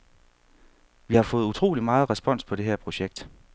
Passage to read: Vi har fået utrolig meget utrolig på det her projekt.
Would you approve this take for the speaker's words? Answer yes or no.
no